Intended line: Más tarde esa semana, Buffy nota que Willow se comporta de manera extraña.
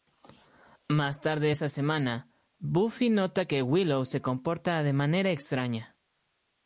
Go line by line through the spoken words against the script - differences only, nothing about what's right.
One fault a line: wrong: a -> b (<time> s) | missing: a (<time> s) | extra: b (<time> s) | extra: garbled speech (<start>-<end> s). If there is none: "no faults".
no faults